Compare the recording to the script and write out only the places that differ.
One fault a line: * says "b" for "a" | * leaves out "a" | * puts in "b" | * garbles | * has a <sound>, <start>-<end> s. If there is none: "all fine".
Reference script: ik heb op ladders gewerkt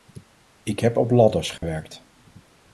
* has a dropout, 1.6-1.6 s